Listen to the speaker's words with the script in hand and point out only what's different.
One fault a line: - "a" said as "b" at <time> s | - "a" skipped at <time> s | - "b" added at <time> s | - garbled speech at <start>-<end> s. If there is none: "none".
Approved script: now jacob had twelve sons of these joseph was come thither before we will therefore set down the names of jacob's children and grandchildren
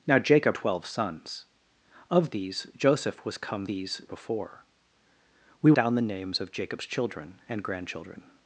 - "had" skipped at 0.6 s
- "thither" said as "these" at 3.6 s
- "will therefore set" skipped at 5.7 s